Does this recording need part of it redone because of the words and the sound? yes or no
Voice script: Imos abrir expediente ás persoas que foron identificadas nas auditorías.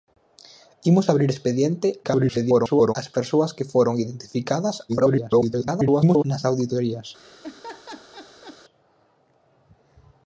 yes